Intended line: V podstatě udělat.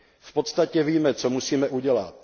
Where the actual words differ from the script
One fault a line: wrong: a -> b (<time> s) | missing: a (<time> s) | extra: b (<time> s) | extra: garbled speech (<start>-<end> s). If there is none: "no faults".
extra: víme co musíme (0.8 s)